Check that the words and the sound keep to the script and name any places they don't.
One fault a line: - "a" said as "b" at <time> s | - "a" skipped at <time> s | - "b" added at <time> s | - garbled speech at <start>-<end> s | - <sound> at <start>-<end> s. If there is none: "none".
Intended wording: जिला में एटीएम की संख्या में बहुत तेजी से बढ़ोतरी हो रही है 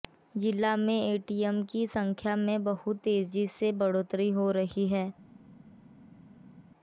none